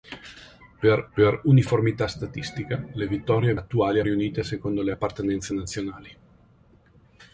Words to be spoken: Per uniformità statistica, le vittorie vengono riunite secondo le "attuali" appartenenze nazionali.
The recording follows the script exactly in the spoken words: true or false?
false